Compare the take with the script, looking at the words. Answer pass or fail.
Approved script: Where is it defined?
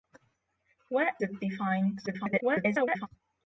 fail